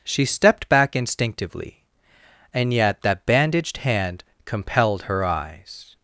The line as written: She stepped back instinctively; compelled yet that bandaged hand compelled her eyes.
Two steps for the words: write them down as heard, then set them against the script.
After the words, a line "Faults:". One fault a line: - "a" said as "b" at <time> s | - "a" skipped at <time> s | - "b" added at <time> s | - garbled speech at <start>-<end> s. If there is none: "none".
She stepped back instinctively; and yet that bandaged hand compelled her eyes.
Faults:
- "compelled" said as "and" at 2.5 s